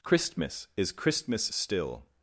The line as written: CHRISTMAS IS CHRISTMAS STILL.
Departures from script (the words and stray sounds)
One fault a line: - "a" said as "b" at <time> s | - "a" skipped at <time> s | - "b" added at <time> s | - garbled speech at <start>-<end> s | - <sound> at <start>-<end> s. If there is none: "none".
none